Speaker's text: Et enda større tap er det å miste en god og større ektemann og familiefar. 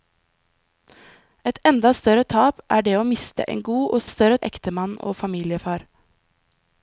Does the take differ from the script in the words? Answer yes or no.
no